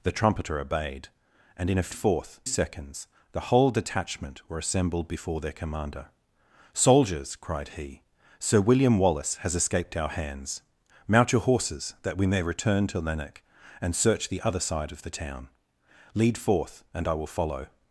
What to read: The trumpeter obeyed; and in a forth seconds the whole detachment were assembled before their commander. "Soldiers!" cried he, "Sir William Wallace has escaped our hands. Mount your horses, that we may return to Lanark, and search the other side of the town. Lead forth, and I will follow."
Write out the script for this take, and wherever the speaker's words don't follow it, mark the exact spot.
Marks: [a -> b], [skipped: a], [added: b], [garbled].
The trumpeter obeyed; and in a forth seconds the whole detachment were assembled before their commander. "Soldiers!" cried he, "Sir William Wallace has escaped our hands. Mount your horses, that we may return to Lanark, and search the other side of the town. Lead forth, and I will follow."